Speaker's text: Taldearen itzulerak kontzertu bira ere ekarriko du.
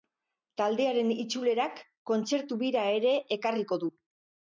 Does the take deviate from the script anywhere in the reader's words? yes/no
no